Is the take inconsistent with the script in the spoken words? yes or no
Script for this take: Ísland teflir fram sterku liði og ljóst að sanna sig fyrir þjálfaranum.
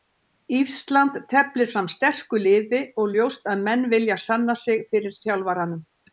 yes